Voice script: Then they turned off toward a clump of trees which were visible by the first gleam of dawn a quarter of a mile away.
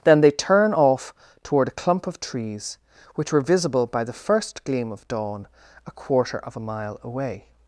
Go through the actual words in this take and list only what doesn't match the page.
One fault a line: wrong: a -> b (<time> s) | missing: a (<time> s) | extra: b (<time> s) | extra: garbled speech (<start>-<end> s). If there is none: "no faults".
wrong: turned -> turn (0.3 s)